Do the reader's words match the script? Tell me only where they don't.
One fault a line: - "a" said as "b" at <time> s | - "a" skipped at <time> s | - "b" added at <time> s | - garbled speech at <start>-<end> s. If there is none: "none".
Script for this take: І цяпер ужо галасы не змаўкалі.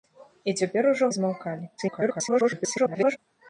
- "галасы" skipped at 1.1 s
- garbled speech at 1.8-3.2 s